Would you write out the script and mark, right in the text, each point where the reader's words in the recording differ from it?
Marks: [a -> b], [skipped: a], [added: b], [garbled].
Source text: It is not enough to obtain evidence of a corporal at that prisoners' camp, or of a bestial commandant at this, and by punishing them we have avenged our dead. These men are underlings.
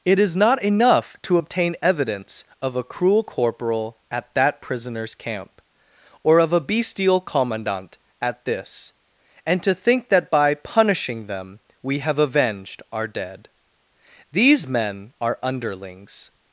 It is not enough to obtain evidence of a [added: cruel] corporal at that prisoners' camp, or of a bestial commandant at this, and [added: to think that] by punishing them we have avenged our dead. These men are underlings.